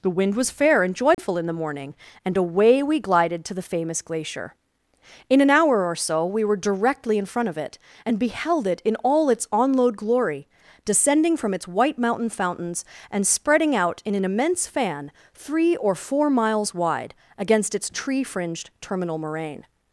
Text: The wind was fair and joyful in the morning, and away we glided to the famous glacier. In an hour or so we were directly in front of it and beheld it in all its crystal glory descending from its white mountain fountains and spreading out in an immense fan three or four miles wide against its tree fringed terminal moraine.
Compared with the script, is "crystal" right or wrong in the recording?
wrong